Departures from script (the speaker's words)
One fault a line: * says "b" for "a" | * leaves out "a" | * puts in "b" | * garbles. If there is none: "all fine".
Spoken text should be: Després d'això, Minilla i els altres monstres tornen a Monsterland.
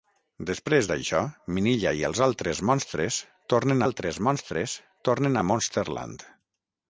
* puts in "altres monstres tornen"